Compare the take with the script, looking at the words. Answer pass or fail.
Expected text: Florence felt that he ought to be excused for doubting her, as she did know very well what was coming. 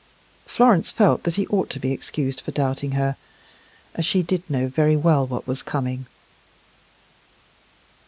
pass